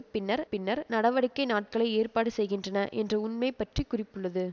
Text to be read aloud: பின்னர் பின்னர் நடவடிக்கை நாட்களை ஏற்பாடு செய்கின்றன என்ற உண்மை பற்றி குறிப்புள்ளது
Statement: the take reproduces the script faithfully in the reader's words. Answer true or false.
true